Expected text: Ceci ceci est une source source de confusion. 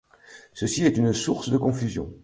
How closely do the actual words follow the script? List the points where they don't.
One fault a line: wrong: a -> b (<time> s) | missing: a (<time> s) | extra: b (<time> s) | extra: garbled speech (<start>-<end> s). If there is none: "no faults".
missing: ceci (0.8 s)
missing: source (1.5 s)